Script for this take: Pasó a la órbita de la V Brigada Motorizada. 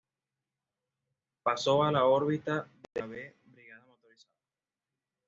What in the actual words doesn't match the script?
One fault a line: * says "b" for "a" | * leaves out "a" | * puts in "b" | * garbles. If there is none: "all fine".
all fine